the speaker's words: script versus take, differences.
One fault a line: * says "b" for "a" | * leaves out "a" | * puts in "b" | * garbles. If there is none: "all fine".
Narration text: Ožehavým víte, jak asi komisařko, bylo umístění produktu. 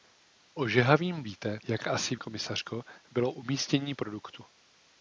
all fine